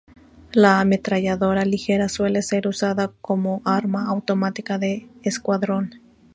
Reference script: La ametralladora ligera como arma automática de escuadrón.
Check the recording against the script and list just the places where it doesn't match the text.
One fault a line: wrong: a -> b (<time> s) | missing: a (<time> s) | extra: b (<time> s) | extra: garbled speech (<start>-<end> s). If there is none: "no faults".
extra: suele ser usada (2.1 s)